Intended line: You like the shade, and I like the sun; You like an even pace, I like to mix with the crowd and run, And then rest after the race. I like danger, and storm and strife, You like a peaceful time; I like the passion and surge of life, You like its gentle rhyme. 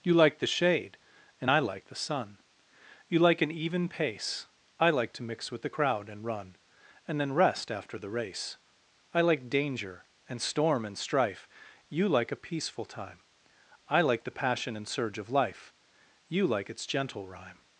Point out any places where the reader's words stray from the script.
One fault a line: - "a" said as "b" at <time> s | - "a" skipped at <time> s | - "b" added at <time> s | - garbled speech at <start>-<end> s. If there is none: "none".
none